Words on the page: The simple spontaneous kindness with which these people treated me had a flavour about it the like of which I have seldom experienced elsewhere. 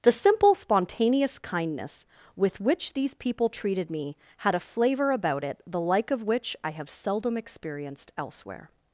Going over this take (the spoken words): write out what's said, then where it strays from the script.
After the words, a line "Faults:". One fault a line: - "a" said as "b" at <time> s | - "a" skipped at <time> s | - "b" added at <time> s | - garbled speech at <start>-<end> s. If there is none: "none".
The simple spontaneous kindness with which these people treated me had a flavour about it the like of which I have seldom experienced elsewhere.
Faults:
none